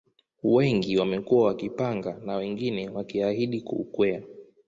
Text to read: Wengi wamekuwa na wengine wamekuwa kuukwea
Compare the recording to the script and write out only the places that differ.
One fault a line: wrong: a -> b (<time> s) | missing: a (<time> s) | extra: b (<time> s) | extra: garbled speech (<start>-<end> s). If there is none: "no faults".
extra: wakipanga (1.5 s)
wrong: wamekuwa -> wakiahidi (2.9 s)